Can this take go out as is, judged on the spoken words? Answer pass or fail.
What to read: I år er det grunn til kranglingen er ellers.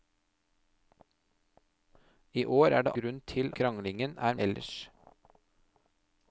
pass